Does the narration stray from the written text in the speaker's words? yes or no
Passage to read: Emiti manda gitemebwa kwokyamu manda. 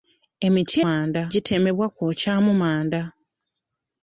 no